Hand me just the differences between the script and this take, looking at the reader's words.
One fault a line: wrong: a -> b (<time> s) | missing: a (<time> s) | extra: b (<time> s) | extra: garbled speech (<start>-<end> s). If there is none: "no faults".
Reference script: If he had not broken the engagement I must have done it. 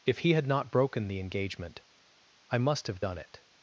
no faults